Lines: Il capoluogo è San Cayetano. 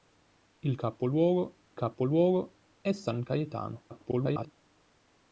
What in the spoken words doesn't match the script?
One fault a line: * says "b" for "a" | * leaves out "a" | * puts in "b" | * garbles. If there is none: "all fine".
* puts in "capoluogo"
* garbles